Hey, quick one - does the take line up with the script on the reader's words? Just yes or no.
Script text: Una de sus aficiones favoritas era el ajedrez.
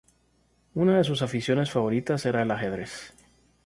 yes